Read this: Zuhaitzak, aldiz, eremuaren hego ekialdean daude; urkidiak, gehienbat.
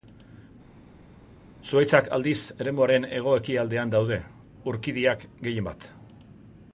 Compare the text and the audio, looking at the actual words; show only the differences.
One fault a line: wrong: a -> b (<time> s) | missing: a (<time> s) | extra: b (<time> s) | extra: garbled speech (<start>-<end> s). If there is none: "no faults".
no faults